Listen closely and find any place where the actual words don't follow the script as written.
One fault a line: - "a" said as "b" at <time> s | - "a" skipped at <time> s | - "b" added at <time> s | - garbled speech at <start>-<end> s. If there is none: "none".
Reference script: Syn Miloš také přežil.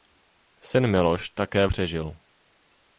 none